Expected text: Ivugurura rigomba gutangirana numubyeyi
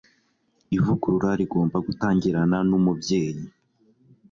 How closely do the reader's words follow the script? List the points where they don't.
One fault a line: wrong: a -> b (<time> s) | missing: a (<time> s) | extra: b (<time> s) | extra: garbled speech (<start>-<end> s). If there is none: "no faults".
no faults